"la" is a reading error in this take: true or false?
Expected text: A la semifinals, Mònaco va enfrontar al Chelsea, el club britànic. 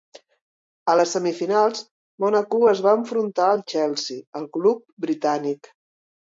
true